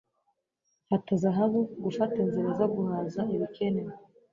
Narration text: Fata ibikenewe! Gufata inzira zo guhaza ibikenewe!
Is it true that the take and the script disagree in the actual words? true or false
true